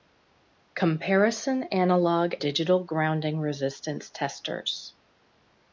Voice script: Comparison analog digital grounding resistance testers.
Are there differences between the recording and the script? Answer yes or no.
no